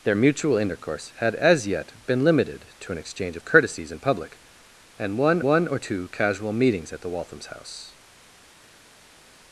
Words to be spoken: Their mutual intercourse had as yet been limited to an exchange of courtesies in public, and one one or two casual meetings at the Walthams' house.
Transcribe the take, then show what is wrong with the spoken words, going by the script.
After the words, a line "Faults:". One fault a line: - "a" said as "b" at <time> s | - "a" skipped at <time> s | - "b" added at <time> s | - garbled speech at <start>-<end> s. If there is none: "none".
Their mutual intercourse had as yet been limited to an exchange of courtesies in public, and one one or two casual meetings at the Walthams' house.
Faults:
none